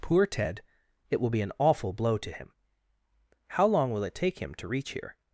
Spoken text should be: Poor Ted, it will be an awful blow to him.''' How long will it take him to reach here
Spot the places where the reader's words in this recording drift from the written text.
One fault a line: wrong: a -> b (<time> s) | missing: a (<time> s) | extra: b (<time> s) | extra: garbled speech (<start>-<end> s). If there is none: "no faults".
no faults